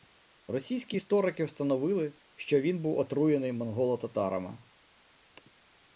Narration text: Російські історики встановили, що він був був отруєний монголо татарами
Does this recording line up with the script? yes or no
no